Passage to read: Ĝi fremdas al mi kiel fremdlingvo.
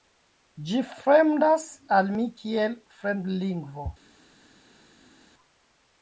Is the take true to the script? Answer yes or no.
yes